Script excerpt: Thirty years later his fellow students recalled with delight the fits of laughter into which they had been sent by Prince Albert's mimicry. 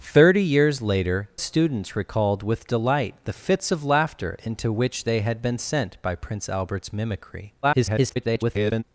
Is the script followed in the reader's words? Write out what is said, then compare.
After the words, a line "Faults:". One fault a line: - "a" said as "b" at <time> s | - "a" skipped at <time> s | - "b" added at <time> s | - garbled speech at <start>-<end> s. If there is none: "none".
Thirty years later students recalled with delight the fits of laughter into which they had been sent by Prince Albert's mimicry. [garbled]
Faults:
- "his fellow" skipped at 1.3 s
- garbled speech at 7.6-8.8 s